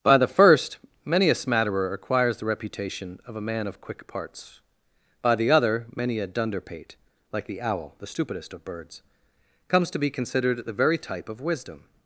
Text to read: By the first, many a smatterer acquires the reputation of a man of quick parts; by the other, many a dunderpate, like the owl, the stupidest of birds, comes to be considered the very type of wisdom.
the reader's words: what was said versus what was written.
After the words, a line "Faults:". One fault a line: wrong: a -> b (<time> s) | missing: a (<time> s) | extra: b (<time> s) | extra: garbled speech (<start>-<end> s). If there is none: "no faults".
By the first, many a smatterer acquires the reputation of a man of quick parts; by the other, many a dunderpate, like the owl, the stupidest of birds, comes to be considered the very type of wisdom.
Faults:
no faults